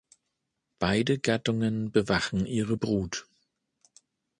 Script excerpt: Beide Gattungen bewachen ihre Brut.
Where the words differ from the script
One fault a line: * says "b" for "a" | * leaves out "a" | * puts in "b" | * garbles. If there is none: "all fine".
all fine